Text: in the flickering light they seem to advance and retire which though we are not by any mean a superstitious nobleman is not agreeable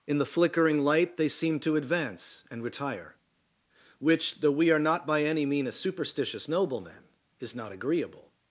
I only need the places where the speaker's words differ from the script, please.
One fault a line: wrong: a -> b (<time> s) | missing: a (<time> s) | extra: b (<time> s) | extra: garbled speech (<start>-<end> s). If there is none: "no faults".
no faults